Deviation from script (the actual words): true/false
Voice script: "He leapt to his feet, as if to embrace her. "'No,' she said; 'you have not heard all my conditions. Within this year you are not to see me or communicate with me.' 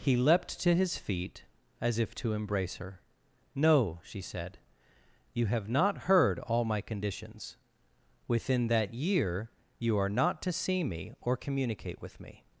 true